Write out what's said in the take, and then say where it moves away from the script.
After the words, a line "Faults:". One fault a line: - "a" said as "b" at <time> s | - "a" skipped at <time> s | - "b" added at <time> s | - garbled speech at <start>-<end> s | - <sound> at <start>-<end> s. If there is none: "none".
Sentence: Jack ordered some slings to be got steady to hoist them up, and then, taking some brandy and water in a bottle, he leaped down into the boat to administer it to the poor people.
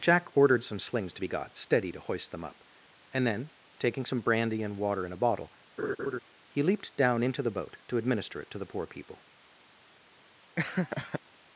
Jack ordered some slings to be got steady to hoist them up, and then, taking some brandy and water in a bottle, he leaped down into the boat to administer it to the poor people.
Faults:
- laugh at 5.8-6.2 s
- laugh at 10.6-11.2 s